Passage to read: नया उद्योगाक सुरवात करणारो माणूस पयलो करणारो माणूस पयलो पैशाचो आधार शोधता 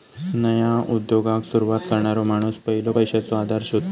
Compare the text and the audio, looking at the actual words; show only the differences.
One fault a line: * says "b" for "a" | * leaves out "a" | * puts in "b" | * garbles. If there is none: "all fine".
* leaves out "करणारो माणूस पयलो"